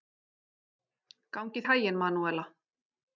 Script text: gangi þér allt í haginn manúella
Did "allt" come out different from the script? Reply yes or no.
yes